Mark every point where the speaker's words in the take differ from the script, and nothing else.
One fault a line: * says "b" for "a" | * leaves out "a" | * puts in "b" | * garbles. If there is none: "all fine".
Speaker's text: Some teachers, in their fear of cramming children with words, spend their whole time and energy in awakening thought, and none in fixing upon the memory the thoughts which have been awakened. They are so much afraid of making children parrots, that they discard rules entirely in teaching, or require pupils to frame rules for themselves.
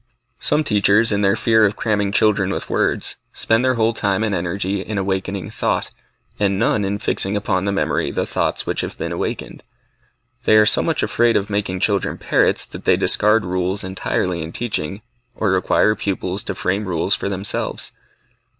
all fine